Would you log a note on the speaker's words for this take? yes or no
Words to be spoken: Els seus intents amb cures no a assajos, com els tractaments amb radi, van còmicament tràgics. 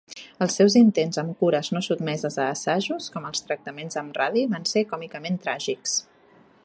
yes